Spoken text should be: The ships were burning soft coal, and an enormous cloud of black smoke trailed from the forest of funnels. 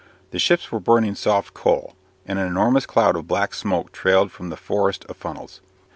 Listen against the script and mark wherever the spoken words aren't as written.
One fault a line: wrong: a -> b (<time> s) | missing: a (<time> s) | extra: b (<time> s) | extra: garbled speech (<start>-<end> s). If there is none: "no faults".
no faults